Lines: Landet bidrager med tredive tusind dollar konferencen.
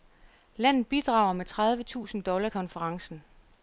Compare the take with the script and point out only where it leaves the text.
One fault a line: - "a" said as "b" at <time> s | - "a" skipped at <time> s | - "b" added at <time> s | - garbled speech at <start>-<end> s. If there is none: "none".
none